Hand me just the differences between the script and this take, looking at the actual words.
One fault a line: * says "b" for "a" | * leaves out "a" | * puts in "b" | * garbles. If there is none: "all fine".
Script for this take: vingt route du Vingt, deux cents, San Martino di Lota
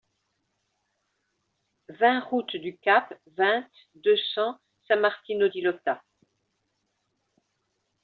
* puts in "Cap"